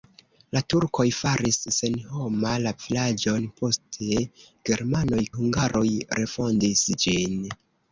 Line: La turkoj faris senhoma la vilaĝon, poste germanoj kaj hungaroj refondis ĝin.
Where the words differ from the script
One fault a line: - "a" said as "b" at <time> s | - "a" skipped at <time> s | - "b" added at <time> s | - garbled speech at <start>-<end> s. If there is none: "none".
- "kaj" skipped at 5.2 s